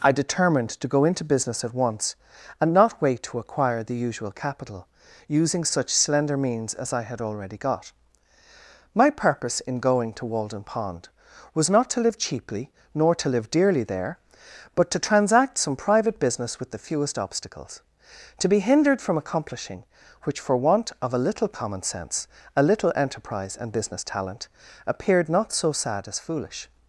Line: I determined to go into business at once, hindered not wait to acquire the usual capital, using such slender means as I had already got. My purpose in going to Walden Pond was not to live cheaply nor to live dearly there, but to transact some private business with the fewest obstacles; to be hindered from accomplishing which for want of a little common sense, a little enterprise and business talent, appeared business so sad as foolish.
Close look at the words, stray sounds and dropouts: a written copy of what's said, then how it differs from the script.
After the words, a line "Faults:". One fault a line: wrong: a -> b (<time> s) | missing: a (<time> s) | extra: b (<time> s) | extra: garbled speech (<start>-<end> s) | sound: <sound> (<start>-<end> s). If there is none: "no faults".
I determined to go into business at once, and not wait to acquire the usual capital, using such slender means as I had already got. My purpose in going to Walden Pond was not to live cheaply nor to live dearly there, but to transact some private business with the fewest obstacles; to be hindered from accomplishing which for want of a little common sense, a little enterprise and business talent, appeared not so sad as foolish.
Faults:
wrong: hindered -> and (2.6 s)
wrong: business -> not (25.3 s)